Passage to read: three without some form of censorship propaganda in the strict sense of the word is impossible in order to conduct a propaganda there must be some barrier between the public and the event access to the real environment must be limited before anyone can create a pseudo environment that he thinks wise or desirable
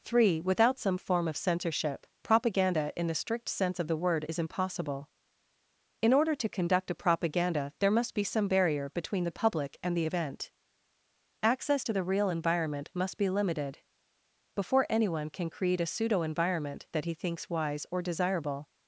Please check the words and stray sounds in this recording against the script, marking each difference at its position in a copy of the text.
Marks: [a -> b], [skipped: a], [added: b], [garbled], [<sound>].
three without some form of censorship propaganda in the strict sense of the word is impossible in order to conduct a propaganda there must be some barrier between the public and the event access to the real environment must be limited before anyone can create a pseudo environment that he thinks wise or desirable